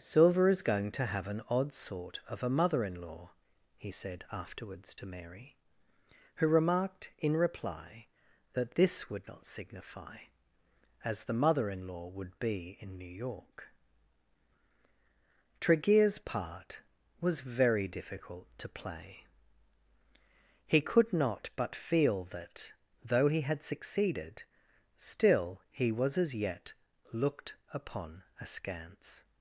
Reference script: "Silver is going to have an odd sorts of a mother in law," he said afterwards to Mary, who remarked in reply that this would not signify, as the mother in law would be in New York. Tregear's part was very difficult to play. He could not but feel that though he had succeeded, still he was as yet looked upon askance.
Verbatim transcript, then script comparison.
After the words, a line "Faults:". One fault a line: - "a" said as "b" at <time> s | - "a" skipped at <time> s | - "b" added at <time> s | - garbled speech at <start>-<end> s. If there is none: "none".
"Silver is going to have an odd sort of a mother in law," he said afterwards to Mary, who remarked in reply that this would not signify, as the mother in law would be in New York. Tregear's part was very difficult to play. He could not but feel that though he had succeeded, still he was as yet looked upon askance.
Faults:
- "sorts" said as "sort" at 1.8 s